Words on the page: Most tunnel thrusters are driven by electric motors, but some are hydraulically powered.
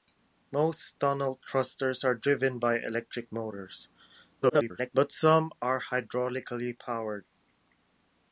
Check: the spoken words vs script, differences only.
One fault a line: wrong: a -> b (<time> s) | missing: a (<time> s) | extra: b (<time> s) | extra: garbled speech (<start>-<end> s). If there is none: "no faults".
extra: garbled speech (4.4-4.9 s)